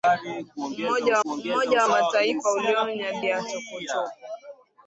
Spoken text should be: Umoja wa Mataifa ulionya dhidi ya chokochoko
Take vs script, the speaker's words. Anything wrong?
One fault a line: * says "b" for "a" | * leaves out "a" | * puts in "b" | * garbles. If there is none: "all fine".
* puts in "umoja"
* leaves out "dhidi"